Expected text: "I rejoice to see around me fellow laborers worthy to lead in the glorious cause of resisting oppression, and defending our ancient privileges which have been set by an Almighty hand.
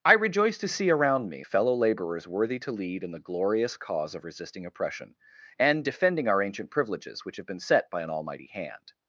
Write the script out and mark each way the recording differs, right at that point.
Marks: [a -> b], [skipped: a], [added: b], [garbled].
"I rejoice to see around me fellow laborers worthy to lead in the glorious cause of resisting oppression, and defending our ancient privileges which have been set by an Almighty hand.